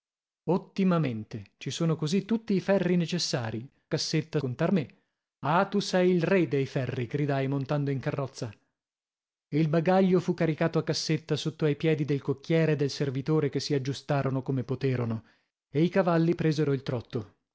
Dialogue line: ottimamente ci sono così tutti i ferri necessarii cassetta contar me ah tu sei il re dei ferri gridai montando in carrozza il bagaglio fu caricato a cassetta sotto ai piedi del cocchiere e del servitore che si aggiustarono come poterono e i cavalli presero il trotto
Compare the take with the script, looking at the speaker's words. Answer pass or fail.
pass